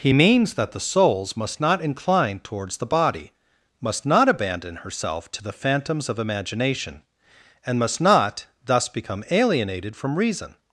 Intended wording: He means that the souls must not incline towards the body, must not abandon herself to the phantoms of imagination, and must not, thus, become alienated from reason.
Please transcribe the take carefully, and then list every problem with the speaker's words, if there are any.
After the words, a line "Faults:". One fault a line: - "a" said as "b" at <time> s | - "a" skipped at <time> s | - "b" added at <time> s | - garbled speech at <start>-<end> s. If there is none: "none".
He means that the souls must not incline towards the body, must not abandon herself to the phantoms of imagination, and must not, thus, become alienated from reason.
Faults:
none